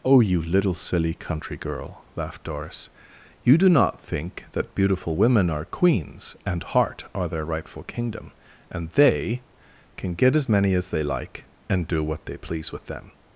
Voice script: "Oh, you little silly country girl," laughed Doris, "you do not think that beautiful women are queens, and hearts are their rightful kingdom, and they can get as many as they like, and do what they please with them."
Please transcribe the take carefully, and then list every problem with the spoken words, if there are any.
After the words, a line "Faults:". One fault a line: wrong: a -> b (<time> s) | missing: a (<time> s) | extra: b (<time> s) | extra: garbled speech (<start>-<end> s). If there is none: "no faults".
"Oh, you little silly country girl," laughed Doris, "you do not think that beautiful women are queens, and heart are their rightful kingdom, and they can get as many as they like, and do what they please with them."
Faults:
wrong: hearts -> heart (6.6 s)